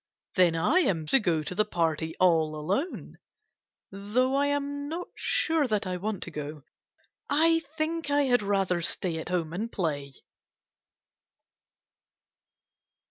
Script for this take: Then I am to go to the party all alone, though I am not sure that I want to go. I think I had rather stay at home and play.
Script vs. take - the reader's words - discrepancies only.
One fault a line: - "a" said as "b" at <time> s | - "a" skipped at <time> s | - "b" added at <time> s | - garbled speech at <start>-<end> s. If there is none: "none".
none